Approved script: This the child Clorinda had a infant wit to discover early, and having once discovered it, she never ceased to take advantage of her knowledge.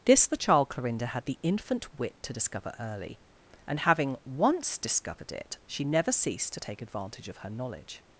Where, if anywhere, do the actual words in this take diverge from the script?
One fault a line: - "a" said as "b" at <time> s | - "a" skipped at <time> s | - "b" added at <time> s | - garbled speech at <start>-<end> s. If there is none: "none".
- "a" said as "the" at 1.2 s